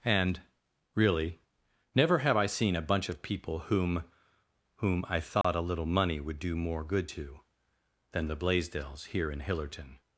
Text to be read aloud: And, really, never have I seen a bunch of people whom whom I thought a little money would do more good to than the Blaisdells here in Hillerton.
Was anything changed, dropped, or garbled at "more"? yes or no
no